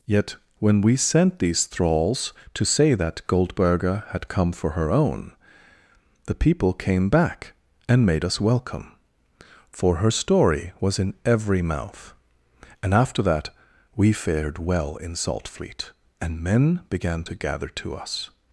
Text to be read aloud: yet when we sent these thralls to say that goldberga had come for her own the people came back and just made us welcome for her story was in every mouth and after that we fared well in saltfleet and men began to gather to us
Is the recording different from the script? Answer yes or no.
yes